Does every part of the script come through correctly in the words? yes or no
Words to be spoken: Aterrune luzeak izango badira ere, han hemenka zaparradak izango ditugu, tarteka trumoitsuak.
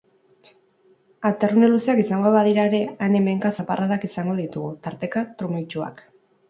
yes